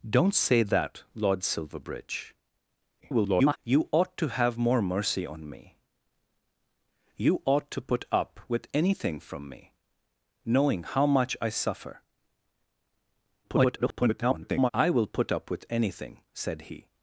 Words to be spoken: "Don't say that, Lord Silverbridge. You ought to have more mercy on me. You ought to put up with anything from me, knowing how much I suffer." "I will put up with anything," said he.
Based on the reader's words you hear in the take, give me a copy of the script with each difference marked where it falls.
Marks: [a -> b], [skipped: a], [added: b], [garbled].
"Don't say that, Lord Silverbridge. [garbled] You ought to have more mercy on me. You ought to put up with anything from me, knowing how much I suffer." [garbled] "I will put up with anything," said he.